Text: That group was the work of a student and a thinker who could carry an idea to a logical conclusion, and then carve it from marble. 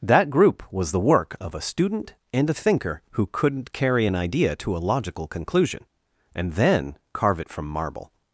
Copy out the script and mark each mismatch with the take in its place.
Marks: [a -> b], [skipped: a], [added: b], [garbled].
That group was the work of a student and a thinker who [could -> couldn't] carry an idea to a logical conclusion, and then carve it from marble.